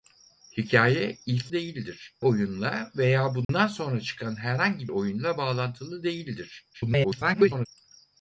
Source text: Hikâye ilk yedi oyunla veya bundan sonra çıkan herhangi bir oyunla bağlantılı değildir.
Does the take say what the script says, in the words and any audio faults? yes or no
no